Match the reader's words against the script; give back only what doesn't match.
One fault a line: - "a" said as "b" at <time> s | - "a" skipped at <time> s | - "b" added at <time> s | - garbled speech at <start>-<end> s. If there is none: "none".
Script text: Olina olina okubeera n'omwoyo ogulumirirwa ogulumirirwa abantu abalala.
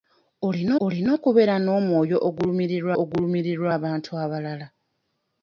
none